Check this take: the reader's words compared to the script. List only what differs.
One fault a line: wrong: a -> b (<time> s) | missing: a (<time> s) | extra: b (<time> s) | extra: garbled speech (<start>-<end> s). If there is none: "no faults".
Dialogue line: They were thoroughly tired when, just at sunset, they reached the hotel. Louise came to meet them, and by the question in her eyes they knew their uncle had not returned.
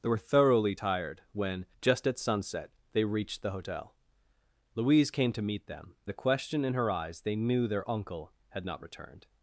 missing: and by (5.9 s)